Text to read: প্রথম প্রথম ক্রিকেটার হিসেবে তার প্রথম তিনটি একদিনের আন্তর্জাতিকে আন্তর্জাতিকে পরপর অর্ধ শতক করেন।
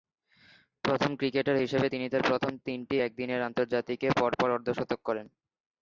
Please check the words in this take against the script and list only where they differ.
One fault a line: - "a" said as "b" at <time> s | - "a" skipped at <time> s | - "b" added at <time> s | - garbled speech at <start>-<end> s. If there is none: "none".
- "প্রথম" skipped at 1.1 s
- "তিনি" added at 1.9 s
- "আন্তর্জাতিকে" skipped at 4.1 s